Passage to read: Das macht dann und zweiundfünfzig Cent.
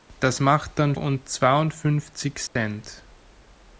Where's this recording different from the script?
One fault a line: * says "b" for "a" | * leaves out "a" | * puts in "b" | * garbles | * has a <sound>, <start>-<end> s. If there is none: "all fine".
* has a dropout, 2.5-2.6 s